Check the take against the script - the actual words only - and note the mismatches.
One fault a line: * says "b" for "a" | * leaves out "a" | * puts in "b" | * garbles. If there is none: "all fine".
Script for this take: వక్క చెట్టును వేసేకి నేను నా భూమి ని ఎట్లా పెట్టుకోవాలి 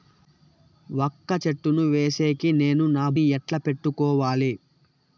* leaves out "భూమి"